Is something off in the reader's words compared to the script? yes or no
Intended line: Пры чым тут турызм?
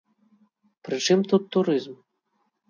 no